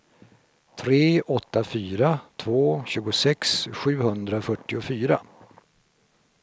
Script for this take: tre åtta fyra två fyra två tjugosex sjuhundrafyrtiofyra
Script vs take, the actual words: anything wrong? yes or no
yes